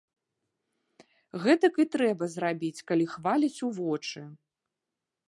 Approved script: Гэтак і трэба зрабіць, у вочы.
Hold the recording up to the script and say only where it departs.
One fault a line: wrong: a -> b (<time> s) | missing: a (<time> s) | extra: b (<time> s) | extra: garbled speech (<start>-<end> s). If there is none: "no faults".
extra: калі хваляць (2.9 s)